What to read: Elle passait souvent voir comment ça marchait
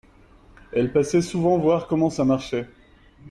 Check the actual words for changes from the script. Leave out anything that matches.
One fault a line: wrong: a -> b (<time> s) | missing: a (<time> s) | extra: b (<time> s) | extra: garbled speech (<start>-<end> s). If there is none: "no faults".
no faults